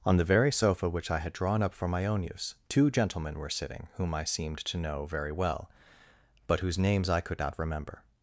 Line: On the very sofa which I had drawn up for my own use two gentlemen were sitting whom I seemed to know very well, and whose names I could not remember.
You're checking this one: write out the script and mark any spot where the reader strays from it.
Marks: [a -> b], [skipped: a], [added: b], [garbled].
On the very sofa which I had drawn up for my own use two gentlemen were sitting whom I seemed to know very well, [and -> but] whose names I could not remember.